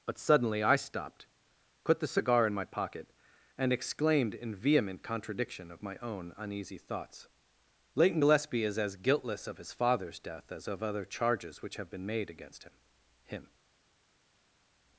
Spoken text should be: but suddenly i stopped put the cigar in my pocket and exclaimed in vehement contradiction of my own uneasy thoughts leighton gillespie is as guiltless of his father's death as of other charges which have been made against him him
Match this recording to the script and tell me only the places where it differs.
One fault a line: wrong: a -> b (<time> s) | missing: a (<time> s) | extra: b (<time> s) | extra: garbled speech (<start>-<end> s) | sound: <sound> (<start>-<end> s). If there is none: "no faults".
no faults